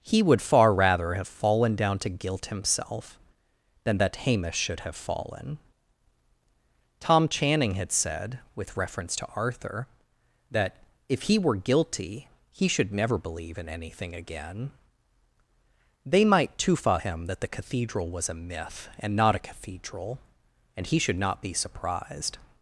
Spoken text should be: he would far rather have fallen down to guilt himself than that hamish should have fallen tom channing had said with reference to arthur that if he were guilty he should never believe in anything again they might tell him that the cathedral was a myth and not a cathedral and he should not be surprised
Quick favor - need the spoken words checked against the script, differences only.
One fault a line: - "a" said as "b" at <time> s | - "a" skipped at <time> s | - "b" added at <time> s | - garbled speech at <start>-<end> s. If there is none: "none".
- "tell" said as "tufa" at 16.6 s